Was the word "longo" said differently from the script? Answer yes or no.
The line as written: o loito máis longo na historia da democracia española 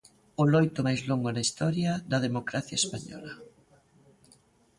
no